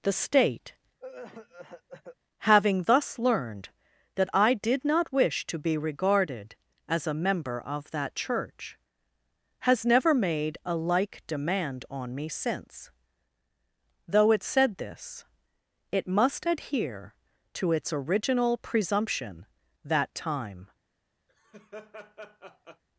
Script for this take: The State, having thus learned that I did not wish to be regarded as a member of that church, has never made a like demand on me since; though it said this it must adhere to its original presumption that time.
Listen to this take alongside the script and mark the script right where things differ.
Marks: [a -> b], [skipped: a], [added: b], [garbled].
The State, having thus learned that I did not wish to be regarded as a member of that church, has never made a like demand on me since; though it said this it must adhere to its original presumption that time.